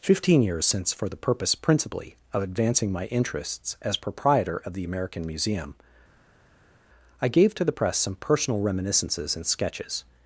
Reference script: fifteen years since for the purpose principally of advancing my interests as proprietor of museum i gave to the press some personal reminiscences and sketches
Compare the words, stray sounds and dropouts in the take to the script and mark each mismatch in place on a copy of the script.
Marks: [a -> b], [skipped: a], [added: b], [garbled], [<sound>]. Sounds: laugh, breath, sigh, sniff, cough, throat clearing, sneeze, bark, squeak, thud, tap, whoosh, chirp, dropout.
fifteen years since for the purpose principally of advancing my interests as proprietor of [added: the american] museum i gave to the press some personal reminiscences and sketches